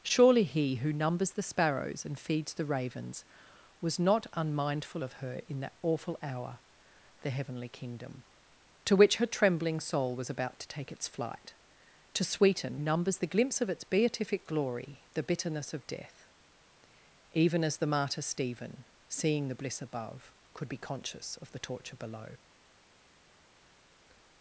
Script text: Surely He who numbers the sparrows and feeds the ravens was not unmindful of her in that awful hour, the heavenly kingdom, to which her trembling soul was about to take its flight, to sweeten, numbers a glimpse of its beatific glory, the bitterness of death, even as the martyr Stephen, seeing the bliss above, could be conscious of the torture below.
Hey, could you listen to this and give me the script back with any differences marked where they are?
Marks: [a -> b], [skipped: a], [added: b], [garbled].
Surely He who numbers the sparrows and feeds the ravens was not unmindful of her in that awful hour, the heavenly kingdom, to which her trembling soul was about to take its flight, to sweeten, numbers a glimpse of its beatific glory, the bitterness of death, even as the martyr Stephen, seeing the bliss above, could be conscious of the torture below.